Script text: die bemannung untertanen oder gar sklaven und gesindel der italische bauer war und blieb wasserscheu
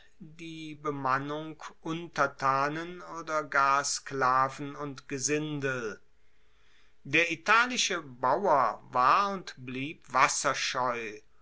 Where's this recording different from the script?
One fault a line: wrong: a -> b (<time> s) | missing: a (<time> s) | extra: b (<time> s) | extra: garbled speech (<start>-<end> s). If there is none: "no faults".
no faults